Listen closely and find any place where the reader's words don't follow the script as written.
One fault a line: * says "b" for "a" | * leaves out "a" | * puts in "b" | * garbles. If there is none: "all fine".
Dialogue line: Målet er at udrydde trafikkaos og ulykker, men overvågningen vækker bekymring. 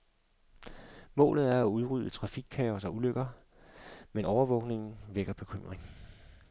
all fine